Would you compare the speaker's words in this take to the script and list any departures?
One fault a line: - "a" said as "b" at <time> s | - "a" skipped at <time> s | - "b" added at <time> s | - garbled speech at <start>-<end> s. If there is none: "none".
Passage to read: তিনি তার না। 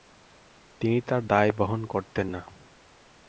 - "দায় বহন করতেন" added at 1.3 s